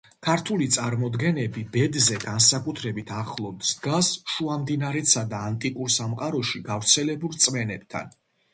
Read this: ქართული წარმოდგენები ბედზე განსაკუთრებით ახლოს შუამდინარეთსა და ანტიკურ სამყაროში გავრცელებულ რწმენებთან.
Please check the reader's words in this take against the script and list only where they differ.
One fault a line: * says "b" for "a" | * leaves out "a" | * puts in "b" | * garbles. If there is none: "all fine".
* puts in "დგას"